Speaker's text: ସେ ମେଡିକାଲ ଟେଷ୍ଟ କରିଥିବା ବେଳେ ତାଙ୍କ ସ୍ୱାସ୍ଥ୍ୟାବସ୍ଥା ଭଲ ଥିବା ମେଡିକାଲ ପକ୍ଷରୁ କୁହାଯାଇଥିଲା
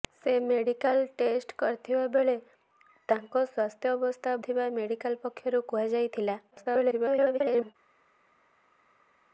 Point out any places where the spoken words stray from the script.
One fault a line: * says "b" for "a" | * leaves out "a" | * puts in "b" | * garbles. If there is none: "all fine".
* leaves out "ଭଲ"
* garbles